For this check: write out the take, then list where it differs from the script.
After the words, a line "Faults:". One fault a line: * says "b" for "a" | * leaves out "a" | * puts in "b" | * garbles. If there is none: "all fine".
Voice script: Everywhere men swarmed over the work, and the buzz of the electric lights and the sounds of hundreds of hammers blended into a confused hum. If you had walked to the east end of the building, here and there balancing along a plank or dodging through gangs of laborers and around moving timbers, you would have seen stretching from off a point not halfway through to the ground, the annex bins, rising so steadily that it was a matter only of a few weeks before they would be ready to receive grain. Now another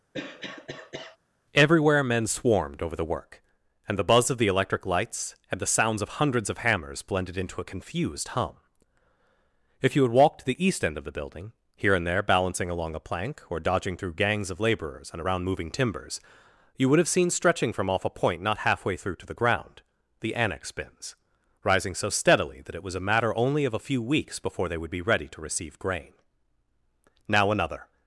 Everywhere men swarmed over the work, and the buzz of the electric lights and the sounds of hundreds of hammers blended into a confused hum. If you had walked to the east end of the building, here and there balancing along a plank or dodging through gangs of laborers and around moving timbers, you would have seen stretching from off a point not halfway through to the ground, the annex bins, rising so steadily that it was a matter only of a few weeks before they would be ready to receive grain. Now another
Faults:
all fine